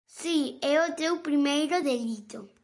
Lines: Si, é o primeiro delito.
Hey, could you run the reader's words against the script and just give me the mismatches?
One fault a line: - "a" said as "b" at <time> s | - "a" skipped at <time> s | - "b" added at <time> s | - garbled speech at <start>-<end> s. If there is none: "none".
- "teu" added at 0.9 s